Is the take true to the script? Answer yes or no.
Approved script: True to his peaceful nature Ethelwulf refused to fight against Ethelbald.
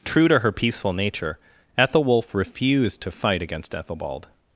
no